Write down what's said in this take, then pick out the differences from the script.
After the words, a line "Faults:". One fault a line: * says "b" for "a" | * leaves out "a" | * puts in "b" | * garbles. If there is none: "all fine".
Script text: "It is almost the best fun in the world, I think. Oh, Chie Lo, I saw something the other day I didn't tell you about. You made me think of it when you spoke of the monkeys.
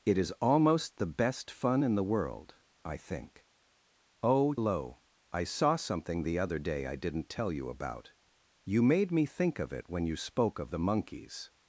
"It is almost the best fun in the world, I think. Oh, Lo, I saw something the other day I didn't tell you about. You made me think of it when you spoke of the monkeys.
Faults:
* leaves out "Chie"